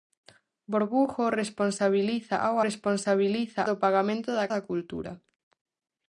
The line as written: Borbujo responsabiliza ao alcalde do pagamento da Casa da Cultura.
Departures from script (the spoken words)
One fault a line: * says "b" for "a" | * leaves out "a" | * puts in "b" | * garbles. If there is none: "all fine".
* says "responsabiliza" for "alcalde"
* leaves out "Casa"